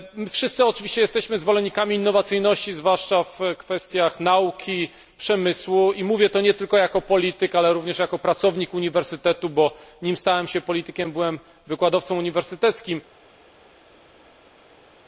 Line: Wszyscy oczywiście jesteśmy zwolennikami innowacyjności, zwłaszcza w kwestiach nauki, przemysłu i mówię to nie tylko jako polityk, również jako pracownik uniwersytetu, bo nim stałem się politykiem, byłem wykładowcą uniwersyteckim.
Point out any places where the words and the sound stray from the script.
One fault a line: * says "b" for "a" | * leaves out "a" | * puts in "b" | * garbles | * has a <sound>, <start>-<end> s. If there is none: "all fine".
* puts in "ale"